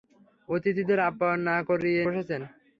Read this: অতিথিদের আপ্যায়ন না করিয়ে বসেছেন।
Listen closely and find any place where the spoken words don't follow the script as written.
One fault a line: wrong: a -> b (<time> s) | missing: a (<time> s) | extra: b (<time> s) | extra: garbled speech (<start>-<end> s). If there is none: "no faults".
no faults